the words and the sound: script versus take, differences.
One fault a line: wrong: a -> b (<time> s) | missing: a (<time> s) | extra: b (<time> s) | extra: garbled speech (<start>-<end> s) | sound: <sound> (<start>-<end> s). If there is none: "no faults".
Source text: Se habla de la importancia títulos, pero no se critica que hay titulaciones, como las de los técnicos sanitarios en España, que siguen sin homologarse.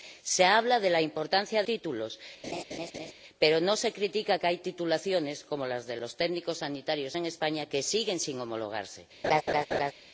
sound: laugh (2.4-3.1 s)
sound: laugh (9.2-9.9 s)